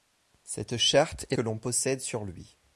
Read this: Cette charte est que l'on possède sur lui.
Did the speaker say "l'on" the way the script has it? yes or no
yes